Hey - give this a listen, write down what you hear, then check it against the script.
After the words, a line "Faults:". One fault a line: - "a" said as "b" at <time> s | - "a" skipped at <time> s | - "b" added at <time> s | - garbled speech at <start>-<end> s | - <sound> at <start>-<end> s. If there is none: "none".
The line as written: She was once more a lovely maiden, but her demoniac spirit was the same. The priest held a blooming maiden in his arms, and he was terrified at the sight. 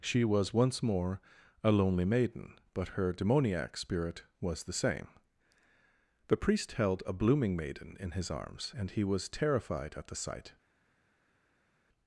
She was once more a lonely maiden, but her demoniac spirit was the same. The priest held a blooming maiden in his arms, and he was terrified at the sight.
Faults:
- "lovely" said as "lonely" at 1.7 s